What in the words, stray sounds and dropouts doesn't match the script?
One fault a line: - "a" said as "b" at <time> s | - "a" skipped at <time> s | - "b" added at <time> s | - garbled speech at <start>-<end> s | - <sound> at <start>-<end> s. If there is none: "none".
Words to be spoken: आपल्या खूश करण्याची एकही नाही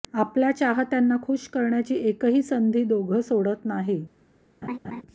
- "चाहत्यांना" added at 0.5 s
- "संधी दोघं सोडत" added at 2.4 s
- laugh at 4.6-5.0 s